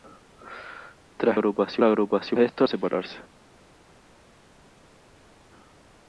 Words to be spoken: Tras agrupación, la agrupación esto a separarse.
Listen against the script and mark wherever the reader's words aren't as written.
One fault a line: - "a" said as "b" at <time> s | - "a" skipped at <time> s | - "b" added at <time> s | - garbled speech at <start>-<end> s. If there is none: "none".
none